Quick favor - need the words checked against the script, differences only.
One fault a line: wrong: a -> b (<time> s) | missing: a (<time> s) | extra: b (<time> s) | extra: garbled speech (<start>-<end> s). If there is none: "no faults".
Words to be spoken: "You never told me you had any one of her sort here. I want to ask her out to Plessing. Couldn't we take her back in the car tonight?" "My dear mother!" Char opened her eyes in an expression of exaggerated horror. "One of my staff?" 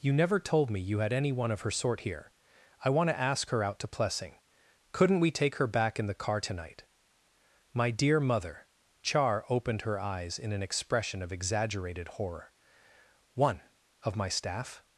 no faults